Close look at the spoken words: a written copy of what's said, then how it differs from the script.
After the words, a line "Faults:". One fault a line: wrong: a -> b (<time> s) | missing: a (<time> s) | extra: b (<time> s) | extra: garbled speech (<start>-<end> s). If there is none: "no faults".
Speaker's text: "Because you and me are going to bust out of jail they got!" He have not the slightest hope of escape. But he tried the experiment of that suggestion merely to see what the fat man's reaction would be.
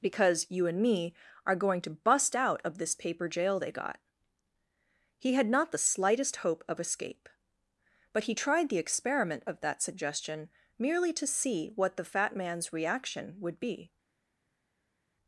"Because you and me are going to bust out of this paper jail they got!" He had not the slightest hope of escape. But he tried the experiment of that suggestion merely to see what the fat man's reaction would be.
Faults:
extra: this paper (2.8 s)
wrong: have -> had (5.3 s)